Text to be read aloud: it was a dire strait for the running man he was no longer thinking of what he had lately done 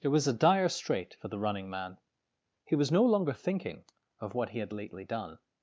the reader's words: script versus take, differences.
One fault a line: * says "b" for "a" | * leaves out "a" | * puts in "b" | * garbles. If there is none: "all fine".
all fine